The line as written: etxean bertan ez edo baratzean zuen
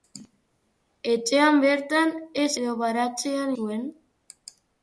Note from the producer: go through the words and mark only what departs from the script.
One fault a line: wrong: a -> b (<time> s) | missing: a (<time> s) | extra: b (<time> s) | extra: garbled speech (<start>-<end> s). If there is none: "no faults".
no faults